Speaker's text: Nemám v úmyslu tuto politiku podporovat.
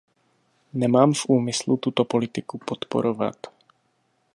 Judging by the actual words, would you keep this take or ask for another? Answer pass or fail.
pass